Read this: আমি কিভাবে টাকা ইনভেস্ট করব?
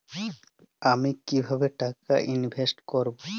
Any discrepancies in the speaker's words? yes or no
no